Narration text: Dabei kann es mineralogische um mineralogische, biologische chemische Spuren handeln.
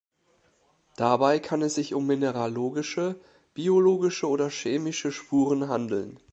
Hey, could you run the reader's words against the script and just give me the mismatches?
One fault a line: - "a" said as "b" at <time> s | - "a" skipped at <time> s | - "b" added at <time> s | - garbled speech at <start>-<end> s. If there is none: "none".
- "mineralogische" said as "sich" at 1.7 s
- "oder" added at 4.3 s